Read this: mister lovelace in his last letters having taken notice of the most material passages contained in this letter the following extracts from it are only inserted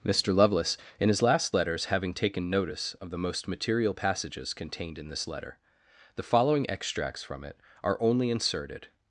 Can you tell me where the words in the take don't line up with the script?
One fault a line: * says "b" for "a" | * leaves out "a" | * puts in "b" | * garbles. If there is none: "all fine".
all fine